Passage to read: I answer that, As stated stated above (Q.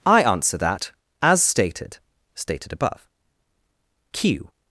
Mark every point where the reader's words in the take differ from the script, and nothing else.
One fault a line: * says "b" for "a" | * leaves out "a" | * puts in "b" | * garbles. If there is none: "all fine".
all fine